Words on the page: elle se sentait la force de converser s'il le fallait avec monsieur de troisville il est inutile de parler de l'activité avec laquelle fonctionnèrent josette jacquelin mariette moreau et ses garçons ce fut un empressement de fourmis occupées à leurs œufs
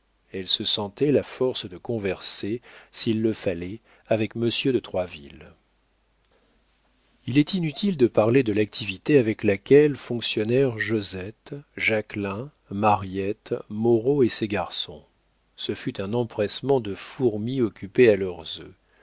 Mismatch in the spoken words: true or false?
false